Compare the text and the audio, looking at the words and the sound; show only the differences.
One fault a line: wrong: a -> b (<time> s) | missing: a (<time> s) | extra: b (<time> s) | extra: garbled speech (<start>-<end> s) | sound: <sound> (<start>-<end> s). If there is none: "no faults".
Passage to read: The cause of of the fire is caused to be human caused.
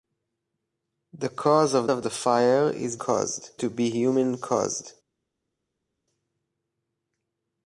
no faults